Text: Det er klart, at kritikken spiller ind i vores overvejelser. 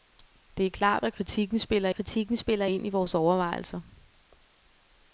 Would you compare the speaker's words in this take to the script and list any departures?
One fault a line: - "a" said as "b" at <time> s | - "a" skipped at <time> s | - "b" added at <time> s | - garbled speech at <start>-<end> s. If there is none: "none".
- "kritikken spiller" added at 1.9 s